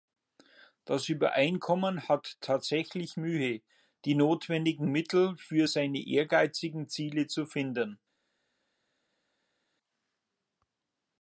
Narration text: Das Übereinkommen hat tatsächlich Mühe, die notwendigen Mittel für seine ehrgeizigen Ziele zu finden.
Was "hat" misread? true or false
false